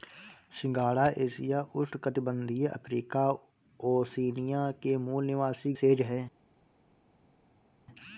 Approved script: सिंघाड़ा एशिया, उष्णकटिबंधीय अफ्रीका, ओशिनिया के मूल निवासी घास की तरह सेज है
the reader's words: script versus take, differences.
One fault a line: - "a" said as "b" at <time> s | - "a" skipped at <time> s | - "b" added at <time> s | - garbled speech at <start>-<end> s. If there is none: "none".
- "घास की तरह" skipped at 5.7 s